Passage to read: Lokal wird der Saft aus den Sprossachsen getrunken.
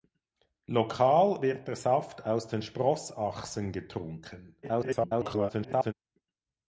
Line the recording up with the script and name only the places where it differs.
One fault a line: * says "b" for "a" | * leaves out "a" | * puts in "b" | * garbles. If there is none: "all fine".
* garbles